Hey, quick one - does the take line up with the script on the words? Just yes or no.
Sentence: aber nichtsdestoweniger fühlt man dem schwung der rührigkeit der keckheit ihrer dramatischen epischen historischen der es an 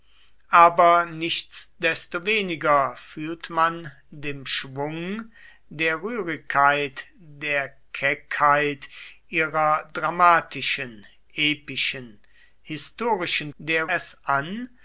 yes